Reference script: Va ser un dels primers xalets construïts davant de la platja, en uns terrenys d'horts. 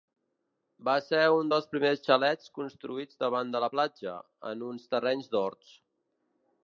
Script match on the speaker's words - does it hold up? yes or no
yes